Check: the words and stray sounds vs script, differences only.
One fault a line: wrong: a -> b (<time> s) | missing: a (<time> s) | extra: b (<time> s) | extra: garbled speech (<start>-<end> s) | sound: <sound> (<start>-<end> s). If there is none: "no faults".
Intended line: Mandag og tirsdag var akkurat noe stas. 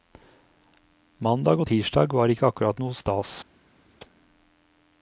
extra: ikke (2.3 s)